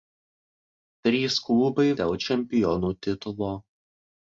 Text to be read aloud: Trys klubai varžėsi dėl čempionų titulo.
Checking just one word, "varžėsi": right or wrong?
wrong